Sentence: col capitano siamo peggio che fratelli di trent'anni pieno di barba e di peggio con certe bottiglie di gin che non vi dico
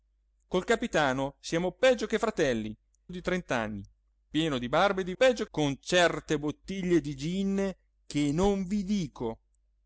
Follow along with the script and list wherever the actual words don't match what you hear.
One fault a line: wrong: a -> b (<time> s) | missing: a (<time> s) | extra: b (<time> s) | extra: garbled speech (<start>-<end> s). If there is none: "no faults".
no faults